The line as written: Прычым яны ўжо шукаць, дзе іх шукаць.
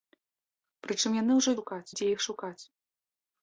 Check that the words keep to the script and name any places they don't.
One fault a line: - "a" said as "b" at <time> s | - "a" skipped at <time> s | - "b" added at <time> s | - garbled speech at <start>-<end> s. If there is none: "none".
none